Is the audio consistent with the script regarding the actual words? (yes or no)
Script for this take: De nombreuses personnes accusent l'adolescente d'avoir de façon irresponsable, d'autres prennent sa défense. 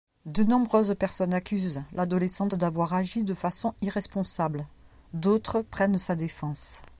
no